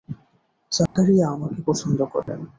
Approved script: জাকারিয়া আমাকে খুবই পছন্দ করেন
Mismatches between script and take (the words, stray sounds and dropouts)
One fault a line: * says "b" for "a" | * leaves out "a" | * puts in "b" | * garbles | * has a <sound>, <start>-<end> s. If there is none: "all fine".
* has a dropout, 0.9-1.0 s
* leaves out "খুবই"
* has a dropout, 2.2-2.3 s